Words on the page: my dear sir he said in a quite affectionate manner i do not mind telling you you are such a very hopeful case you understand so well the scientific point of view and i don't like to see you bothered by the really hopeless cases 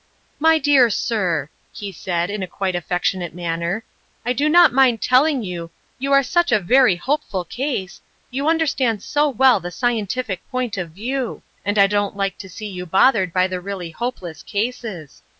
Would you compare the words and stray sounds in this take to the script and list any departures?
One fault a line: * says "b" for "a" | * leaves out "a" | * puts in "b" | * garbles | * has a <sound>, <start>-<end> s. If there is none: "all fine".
all fine